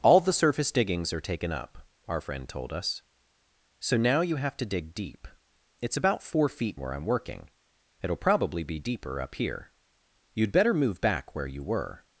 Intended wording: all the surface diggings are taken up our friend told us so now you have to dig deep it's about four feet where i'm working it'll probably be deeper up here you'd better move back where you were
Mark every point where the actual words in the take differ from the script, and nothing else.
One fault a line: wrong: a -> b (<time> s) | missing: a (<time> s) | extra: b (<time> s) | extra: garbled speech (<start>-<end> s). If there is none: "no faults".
no faults